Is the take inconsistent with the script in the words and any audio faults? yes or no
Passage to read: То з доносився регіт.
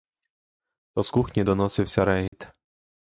yes